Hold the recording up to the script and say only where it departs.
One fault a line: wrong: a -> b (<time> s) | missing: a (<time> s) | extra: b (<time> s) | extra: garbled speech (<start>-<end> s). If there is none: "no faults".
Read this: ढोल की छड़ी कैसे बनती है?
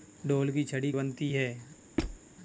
missing: कैसे (0.9 s)